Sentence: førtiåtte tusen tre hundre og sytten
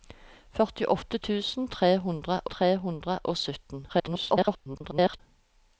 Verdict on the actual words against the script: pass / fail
fail